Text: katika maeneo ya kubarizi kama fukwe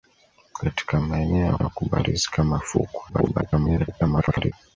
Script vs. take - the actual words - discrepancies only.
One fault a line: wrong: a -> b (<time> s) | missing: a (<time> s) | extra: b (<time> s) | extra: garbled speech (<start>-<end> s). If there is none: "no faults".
extra: ya (1.6 s)
extra: garbled speech (3.1-4.5 s)